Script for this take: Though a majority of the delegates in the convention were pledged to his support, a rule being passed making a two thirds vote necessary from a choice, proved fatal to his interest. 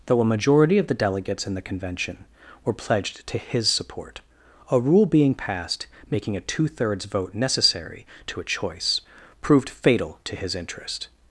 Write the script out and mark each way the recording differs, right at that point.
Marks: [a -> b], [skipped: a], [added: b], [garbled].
Though a majority of the delegates in the convention were pledged to his support, a rule being passed making a two thirds vote necessary [from -> to] a choice, proved fatal to his interest.